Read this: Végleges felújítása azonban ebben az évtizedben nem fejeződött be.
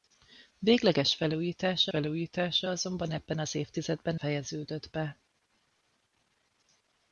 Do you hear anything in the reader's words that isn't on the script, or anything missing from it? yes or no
yes